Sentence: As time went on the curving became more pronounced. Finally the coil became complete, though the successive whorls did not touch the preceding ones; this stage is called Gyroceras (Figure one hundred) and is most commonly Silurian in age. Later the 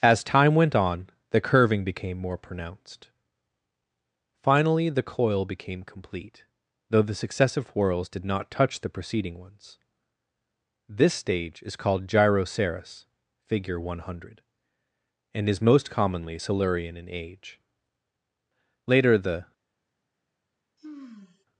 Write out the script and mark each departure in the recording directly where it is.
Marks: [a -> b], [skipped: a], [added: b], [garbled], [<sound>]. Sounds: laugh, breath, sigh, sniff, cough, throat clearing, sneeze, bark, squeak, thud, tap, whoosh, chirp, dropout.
As time went on the curving became more pronounced. Finally the coil became complete, though the successive whorls did not touch the preceding ones; this stage is called Gyroceras (Figure one hundred) and is most commonly Silurian in age. Later the [sigh]